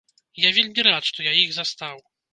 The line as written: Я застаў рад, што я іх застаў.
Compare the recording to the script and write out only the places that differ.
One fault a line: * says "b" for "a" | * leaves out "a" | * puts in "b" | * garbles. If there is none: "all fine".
* says "вельмі" for "застаў"